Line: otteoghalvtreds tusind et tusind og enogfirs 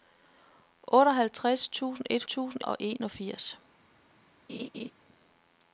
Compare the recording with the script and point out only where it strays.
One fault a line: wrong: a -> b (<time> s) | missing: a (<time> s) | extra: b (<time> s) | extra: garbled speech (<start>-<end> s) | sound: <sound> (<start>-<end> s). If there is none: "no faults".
sound: laugh (4.5-4.9 s)